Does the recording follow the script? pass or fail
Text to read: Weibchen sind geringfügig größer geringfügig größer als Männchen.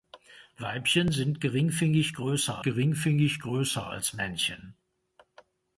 pass